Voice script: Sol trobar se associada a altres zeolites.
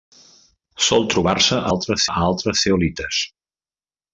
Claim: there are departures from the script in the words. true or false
true